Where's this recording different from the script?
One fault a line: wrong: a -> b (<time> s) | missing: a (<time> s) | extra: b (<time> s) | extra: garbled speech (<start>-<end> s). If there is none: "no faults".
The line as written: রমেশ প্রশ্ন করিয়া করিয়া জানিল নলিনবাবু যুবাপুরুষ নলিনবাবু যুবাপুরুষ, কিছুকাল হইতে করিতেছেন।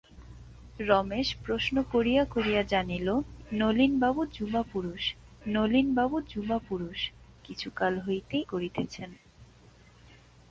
no faults